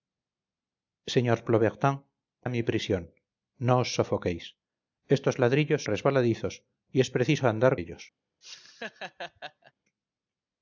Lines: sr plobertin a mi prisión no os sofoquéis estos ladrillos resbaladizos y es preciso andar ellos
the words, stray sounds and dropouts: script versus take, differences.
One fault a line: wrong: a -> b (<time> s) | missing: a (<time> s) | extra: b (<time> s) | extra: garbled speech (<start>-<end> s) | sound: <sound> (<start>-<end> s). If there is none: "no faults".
sound: laugh (8.4-9.7 s)